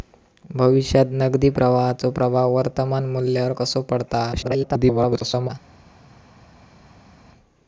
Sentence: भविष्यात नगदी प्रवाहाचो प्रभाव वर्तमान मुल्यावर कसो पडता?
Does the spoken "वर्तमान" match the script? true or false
true